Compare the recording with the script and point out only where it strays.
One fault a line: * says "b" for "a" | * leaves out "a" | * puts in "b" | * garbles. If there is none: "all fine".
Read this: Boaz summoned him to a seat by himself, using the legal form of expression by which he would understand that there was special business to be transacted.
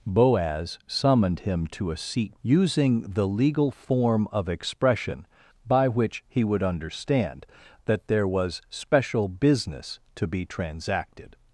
* leaves out "by himself"